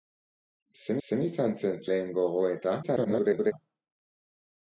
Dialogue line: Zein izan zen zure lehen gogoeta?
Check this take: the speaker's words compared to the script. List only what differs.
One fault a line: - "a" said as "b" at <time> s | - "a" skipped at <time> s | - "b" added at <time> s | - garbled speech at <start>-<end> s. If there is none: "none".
- "zein" added at 1.1 s
- "zure" skipped at 1.8 s
- garbled speech at 2.8-3.5 s